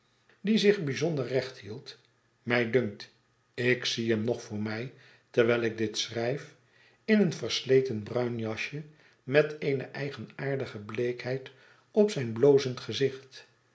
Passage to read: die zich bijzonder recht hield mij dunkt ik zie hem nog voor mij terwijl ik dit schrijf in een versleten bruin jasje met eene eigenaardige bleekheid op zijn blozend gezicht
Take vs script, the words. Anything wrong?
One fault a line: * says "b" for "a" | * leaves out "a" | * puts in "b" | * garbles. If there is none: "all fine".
all fine